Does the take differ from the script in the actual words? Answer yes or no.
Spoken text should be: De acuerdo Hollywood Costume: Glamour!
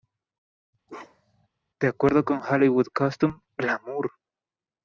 yes